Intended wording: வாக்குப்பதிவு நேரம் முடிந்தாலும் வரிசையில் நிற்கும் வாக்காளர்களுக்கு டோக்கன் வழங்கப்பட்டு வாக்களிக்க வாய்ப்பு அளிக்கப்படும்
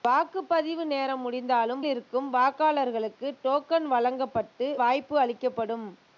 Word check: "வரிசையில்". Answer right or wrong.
wrong